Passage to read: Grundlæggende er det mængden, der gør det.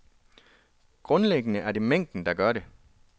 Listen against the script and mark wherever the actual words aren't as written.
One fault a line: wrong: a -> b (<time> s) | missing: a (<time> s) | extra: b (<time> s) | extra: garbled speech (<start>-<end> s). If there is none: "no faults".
no faults